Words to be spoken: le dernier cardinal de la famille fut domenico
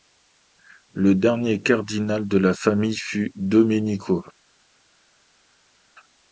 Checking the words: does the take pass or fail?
pass